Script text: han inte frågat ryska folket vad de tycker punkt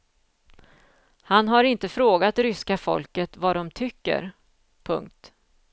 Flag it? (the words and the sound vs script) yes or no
yes